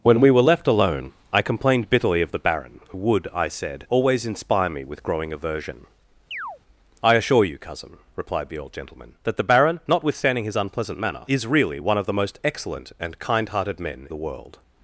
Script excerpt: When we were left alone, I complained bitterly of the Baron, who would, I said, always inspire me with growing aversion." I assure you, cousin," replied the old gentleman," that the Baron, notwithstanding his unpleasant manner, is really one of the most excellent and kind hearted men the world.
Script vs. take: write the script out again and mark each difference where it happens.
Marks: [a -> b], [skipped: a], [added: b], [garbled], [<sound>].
When we were left alone, I complained bitterly of the Baron, who would, I said, always inspire me with growing aversion." [chirp] I assure you, cousin," replied the old gentleman," that the Baron, notwithstanding his unpleasant manner, is really one of the most excellent and kind hearted men the world.